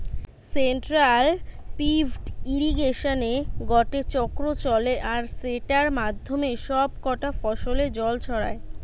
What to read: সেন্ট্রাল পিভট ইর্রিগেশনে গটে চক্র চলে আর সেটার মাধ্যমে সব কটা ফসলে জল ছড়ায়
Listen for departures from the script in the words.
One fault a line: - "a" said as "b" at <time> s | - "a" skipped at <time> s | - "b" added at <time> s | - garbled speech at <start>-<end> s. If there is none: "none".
none